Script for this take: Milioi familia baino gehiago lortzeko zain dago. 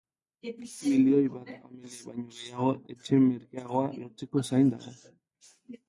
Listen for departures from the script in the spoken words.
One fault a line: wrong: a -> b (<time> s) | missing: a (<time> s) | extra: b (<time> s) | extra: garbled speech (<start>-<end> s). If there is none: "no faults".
extra: bat (1.3 s)
extra: etxe merkeagoa (3.0 s)